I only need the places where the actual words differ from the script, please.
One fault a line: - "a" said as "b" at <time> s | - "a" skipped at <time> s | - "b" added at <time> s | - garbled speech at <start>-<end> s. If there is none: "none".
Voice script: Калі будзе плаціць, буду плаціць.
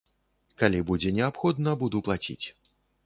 - "плаціць" said as "неабходна" at 1.2 s